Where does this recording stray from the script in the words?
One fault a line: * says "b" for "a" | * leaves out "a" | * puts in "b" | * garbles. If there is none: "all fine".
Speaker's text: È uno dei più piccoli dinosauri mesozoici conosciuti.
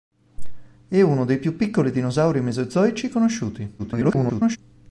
* garbles